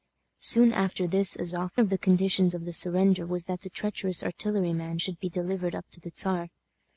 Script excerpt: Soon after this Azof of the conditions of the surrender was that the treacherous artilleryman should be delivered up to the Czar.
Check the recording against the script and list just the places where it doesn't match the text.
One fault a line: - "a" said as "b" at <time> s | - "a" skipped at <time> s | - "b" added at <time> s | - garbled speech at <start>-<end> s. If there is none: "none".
none